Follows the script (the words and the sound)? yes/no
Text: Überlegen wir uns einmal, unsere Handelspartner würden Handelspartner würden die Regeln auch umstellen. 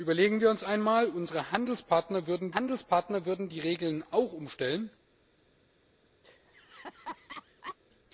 no